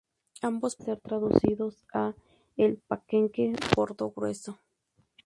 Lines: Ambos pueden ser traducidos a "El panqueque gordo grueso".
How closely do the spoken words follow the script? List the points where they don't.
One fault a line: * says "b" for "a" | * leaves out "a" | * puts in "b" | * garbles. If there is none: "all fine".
* leaves out "pueden"